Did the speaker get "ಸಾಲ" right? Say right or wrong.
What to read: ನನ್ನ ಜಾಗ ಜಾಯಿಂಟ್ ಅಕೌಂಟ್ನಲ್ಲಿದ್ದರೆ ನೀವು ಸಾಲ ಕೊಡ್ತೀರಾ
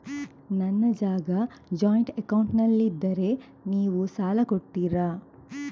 right